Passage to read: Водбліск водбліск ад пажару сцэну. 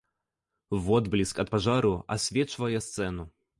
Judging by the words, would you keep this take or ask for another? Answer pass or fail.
fail